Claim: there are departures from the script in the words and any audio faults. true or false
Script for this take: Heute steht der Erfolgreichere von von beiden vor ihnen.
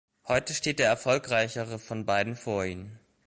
true